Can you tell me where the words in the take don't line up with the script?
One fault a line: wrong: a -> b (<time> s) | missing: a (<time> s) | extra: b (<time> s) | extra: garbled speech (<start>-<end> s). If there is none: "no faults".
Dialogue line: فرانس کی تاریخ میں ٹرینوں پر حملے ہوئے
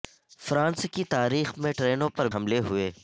no faults